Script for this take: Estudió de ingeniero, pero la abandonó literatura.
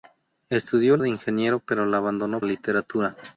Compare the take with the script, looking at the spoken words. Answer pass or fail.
pass